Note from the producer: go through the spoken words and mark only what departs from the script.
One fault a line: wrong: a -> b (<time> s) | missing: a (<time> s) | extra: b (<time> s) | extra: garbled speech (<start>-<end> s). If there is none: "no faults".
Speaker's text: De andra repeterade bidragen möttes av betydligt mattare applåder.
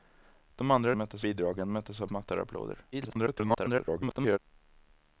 wrong: repeterade -> möttes (1.0 s)
missing: betydligt (2.1 s)
extra: garbled speech (2.9-4.4 s)